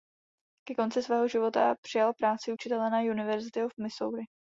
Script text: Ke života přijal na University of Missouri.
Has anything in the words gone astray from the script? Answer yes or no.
yes